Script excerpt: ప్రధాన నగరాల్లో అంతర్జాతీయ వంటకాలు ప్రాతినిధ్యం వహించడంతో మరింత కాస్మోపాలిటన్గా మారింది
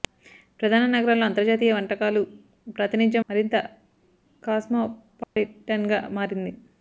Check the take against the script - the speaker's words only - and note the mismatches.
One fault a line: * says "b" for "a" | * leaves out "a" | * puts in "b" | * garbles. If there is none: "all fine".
* leaves out "వహించడంతో"